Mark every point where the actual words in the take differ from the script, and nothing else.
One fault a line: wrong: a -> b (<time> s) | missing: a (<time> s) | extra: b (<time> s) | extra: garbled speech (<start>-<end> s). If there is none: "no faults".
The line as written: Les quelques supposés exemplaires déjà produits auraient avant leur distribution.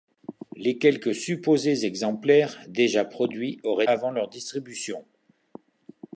no faults